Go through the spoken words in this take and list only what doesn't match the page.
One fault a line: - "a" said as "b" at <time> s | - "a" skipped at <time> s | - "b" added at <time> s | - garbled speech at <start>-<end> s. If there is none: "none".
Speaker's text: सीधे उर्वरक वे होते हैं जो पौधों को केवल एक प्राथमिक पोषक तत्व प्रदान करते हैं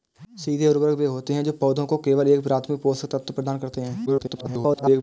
- garbled speech at 4.1-5.0 s